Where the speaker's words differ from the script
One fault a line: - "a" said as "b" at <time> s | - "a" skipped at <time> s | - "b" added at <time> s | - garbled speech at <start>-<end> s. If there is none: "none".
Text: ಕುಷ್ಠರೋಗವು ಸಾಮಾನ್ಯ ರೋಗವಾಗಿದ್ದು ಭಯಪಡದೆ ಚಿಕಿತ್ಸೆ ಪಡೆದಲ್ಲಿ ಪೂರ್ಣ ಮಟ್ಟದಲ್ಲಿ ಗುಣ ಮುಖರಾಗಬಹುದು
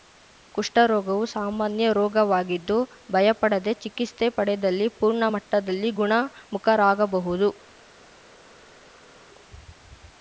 none